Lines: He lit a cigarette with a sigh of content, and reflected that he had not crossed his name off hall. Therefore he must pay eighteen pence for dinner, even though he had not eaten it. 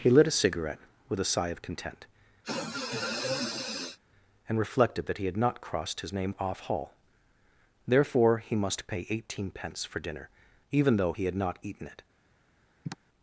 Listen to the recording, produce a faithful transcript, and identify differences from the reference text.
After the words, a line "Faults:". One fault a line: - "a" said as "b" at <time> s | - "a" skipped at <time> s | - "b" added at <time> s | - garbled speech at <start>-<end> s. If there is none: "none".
He lit a cigarette with a sigh of content, and reflected that he had not crossed his name off hall. Therefore he must pay eighteen pence for dinner, even though he had not eaten it.
Faults:
none